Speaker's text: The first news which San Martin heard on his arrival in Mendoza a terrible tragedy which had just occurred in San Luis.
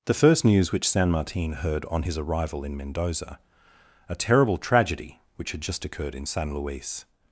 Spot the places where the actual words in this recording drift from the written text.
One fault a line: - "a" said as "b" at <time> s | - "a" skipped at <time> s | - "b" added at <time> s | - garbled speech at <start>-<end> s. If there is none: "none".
none